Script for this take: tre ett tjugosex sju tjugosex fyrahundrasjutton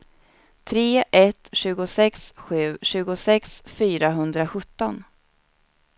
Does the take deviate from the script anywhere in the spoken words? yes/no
no